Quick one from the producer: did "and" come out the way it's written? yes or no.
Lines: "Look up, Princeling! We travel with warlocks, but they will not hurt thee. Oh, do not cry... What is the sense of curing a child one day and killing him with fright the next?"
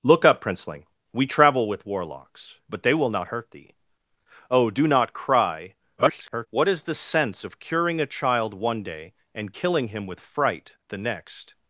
yes